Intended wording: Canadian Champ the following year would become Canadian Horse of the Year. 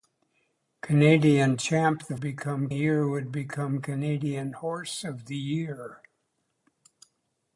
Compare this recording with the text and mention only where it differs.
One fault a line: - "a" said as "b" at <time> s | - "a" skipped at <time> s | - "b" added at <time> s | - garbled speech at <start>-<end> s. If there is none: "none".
- "following" said as "become" at 2.2 s